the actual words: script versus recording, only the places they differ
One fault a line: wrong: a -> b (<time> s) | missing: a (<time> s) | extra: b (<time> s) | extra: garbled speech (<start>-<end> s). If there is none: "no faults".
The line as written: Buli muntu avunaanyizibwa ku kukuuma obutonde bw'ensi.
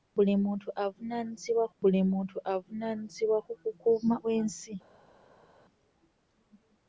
extra: buli muntu avunaanyizibwa (1.8 s)
missing: obutonde (4.1 s)